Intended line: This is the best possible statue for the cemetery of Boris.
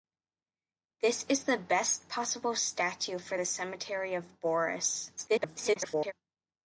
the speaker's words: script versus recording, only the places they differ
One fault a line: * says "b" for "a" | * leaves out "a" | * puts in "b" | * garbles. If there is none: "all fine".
* garbles